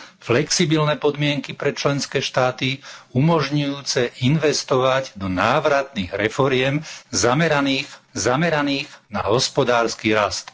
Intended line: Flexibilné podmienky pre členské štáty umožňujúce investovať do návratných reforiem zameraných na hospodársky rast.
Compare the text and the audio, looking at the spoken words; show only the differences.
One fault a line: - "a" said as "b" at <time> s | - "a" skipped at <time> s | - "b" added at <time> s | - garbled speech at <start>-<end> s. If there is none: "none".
- "zameraných" added at 8.1 s